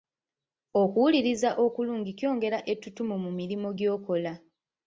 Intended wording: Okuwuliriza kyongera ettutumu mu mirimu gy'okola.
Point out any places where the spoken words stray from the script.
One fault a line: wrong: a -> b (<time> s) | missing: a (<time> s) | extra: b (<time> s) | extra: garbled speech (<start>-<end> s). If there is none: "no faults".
extra: okulungi (1.6 s)